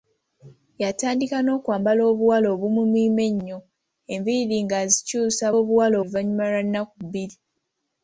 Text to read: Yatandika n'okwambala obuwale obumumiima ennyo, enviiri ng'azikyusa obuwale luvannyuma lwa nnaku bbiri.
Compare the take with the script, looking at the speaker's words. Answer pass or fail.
pass